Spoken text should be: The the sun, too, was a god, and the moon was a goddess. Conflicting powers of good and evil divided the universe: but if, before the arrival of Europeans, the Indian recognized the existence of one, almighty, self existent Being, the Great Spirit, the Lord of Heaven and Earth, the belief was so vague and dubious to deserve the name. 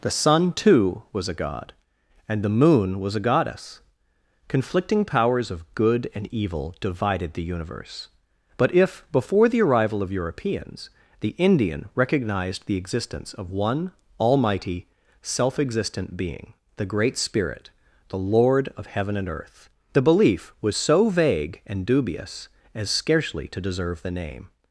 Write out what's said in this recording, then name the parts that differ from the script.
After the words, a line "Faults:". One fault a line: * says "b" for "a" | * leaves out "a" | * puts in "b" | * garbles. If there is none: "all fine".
The sun, too, was a god, and the moon was a goddess. Conflicting powers of good and evil divided the universe: but if, before the arrival of Europeans, the Indian recognized the existence of one, almighty, self existent Being, the Great Spirit, the Lord of Heaven and Earth, the belief was so vague and dubious as scarcely to deserve the name.
Faults:
* leaves out "the"
* puts in "as scarcely"